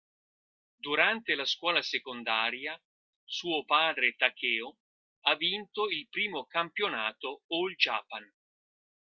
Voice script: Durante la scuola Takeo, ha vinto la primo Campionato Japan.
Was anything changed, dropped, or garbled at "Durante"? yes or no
no